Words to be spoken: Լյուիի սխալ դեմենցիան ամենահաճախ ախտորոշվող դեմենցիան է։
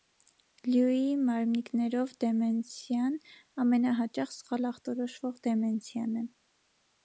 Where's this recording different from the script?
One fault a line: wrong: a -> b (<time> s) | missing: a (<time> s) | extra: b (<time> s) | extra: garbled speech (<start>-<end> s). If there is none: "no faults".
wrong: սխալ -> մարմնիկներով (1.2 s)
extra: սխալ (4.4 s)